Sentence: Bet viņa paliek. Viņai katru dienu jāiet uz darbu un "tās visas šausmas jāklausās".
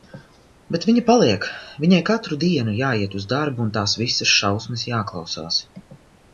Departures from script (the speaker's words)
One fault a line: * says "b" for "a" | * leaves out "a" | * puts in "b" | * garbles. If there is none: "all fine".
all fine